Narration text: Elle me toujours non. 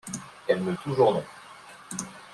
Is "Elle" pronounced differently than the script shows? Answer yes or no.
no